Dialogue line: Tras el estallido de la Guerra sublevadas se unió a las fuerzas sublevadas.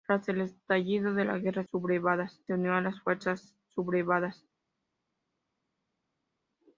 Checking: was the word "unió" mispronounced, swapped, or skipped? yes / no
no